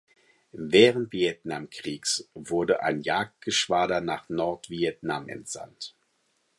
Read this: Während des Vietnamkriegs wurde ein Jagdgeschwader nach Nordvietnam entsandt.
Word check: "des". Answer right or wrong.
wrong